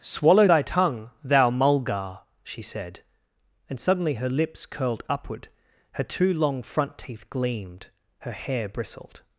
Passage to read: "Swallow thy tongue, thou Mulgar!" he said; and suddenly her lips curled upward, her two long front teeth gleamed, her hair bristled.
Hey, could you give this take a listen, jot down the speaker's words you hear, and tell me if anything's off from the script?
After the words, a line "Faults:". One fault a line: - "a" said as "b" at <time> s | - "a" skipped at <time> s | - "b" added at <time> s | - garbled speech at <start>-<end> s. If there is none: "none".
"Swallow thy tongue, thou Mulgar!" she said; and suddenly her lips curled upward, her two long front teeth gleamed, her hair bristled.
Faults:
- "he" said as "she" at 2.4 s